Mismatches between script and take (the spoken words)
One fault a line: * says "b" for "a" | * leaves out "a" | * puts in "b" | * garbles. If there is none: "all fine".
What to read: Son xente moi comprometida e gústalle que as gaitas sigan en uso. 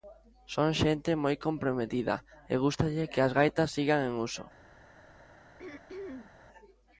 all fine